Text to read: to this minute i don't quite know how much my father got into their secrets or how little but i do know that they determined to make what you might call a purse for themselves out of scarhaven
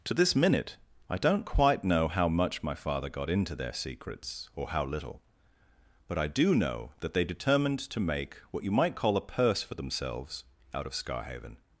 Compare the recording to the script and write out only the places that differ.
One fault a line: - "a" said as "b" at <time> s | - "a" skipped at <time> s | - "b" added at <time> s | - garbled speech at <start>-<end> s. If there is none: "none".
none